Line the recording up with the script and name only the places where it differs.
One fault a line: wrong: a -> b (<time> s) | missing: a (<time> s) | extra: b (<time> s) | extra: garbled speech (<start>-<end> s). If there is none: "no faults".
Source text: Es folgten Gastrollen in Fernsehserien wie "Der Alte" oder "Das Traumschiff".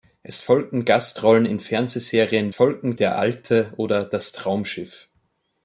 wrong: wie -> folgten (2.5 s)